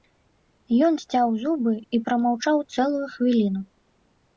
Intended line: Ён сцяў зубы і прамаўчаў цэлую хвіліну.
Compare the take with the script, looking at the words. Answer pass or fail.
pass